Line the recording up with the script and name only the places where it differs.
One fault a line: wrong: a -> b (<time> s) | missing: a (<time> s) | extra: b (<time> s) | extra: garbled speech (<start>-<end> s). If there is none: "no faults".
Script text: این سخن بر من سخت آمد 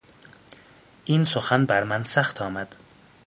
no faults